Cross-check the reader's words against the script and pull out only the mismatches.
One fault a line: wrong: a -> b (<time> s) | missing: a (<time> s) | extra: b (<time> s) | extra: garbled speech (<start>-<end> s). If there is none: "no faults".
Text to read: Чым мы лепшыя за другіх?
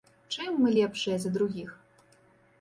no faults